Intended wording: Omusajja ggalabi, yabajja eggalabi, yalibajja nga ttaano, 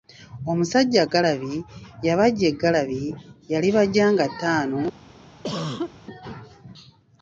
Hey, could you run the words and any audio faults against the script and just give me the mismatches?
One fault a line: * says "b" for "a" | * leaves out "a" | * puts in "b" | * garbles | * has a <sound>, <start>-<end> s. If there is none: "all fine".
* has a cough, 5.4-5.9 s